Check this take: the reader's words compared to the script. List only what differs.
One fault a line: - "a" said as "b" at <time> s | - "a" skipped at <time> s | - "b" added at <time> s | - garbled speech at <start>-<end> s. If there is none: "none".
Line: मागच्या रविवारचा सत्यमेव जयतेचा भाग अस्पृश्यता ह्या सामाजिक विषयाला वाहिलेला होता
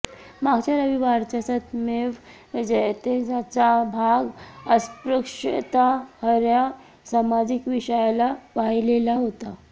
none